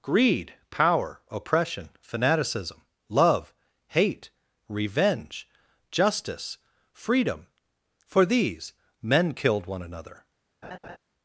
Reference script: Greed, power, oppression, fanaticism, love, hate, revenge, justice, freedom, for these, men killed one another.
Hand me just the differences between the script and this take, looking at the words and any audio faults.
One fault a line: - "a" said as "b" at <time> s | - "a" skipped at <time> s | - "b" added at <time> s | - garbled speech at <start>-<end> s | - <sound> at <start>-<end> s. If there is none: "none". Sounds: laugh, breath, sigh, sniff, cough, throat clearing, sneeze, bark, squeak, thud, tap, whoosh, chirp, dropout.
- laugh at 10.6-11.0 s